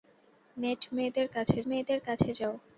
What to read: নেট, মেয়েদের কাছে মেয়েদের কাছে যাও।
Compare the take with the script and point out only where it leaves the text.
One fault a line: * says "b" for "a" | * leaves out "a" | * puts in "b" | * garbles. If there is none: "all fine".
all fine